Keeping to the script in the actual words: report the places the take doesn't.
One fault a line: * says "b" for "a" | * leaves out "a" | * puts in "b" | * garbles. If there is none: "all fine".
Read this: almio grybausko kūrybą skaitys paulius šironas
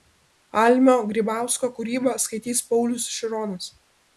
all fine